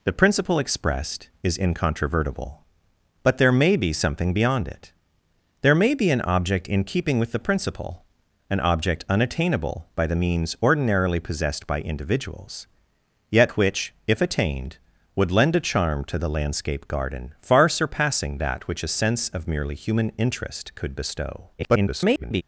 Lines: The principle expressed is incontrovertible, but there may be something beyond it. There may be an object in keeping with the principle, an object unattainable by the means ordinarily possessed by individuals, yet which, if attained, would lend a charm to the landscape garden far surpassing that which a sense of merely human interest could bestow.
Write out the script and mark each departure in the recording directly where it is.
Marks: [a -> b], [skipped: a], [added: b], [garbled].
The principle expressed is incontrovertible, but there may be something beyond it. There may be an object in keeping with the principle, an object unattainable by the means ordinarily possessed by individuals, yet which, if attained, would lend a charm to the landscape garden far surpassing that which a sense of merely human interest could bestow. [garbled]